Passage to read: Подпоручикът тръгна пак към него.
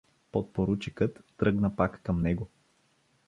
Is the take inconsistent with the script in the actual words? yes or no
no